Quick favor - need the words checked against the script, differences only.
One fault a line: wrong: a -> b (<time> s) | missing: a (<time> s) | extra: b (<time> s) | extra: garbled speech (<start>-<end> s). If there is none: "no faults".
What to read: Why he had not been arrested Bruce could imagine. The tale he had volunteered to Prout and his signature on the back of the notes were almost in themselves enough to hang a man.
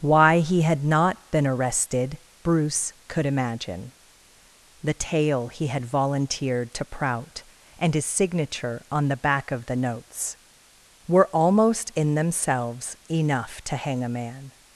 no faults